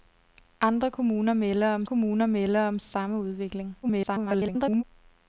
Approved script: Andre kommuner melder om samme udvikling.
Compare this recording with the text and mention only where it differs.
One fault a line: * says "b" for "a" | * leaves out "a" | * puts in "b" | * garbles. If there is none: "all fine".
* puts in "kommuner melder om"
* garbles